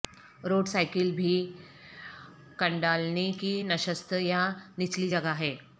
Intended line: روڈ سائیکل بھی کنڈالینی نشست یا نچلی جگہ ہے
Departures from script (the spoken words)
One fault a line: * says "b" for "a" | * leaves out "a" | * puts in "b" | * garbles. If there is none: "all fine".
* puts in "کی"